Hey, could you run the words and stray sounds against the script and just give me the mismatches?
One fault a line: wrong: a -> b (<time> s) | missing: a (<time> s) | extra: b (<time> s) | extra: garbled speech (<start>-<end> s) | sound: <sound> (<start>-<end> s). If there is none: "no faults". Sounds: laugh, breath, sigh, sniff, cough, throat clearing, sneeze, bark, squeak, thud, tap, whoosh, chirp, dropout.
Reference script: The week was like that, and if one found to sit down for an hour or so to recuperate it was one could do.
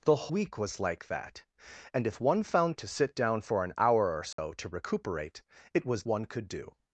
sound: dropout (4.3-4.4 s)